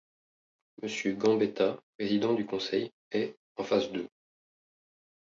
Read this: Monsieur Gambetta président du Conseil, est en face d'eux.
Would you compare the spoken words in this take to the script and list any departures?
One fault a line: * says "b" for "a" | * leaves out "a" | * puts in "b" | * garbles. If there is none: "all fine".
all fine